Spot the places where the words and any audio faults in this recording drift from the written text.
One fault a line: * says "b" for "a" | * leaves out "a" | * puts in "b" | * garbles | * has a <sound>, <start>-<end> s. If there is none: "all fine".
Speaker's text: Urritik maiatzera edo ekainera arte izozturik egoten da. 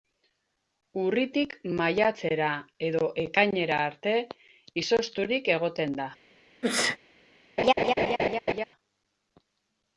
* has a sneeze, 6.6-7.0 s
* has a laugh, 7.6-8.6 s